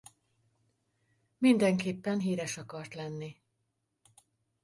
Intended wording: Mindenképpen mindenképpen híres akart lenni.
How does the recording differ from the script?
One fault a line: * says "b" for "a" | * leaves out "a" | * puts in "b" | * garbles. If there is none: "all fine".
* leaves out "mindenképpen"